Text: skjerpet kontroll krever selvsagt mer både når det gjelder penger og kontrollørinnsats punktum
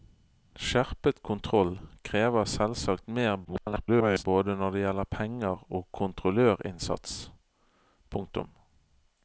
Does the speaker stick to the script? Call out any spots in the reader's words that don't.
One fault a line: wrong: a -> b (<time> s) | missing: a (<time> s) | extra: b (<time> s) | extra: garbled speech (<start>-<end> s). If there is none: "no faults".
extra: garbled speech (3.4-4.2 s)